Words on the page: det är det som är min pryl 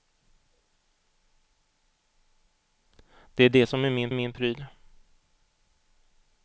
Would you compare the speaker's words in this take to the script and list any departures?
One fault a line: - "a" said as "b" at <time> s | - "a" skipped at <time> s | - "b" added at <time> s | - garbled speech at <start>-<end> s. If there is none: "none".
- "min" added at 4.1 s